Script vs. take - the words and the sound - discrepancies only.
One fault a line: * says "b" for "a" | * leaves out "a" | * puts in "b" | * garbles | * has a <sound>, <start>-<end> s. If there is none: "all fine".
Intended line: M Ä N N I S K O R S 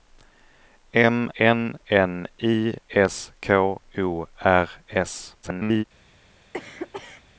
* leaves out "Ä"
* garbles
* has a cough, 6.5-7.2 s